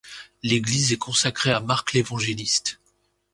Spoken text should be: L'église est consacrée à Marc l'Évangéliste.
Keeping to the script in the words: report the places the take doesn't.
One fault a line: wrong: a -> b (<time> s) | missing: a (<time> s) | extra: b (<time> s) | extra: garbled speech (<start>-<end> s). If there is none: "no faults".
no faults